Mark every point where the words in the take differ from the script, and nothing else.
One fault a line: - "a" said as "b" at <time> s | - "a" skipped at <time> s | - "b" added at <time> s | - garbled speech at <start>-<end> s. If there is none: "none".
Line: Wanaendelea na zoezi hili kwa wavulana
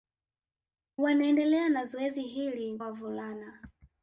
- "kwa" skipped at 2.8 s